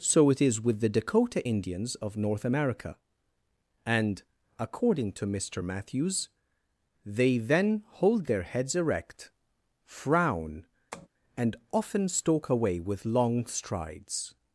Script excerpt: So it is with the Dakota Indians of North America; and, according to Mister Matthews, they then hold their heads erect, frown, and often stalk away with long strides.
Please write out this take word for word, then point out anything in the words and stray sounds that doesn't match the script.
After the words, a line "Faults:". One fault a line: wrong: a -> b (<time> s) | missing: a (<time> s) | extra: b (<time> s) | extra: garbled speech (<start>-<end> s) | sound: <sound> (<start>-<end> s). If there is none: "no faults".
So it is with the Dakota Indians of North America; and, according to Mister Matthews, they then hold their heads erect, frown, and often stalk away with long strides.
Faults:
sound: tap (10.9-11.1 s)